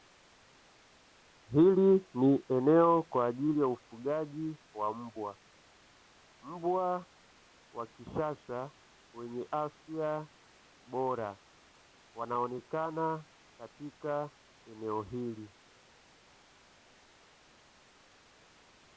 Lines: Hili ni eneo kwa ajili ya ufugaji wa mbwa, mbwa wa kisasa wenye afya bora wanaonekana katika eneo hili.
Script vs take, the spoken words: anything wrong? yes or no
no